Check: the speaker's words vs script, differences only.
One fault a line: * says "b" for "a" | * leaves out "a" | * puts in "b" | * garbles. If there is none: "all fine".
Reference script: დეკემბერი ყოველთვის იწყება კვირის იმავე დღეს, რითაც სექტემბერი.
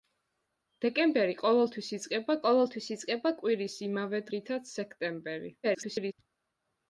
* puts in "ყოველთვის იწყება"
* leaves out "დღეს"
* garbles